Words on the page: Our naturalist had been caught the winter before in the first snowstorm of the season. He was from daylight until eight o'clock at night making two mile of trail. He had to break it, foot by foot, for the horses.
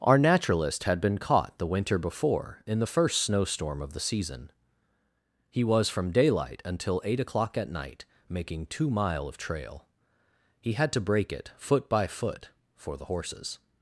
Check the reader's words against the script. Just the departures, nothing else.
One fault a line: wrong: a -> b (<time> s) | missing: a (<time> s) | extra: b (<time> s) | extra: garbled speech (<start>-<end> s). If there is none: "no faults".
no faults